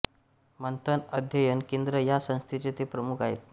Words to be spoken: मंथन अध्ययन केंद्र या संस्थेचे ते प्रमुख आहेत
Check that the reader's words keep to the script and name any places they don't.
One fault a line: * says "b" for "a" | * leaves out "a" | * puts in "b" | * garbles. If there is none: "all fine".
all fine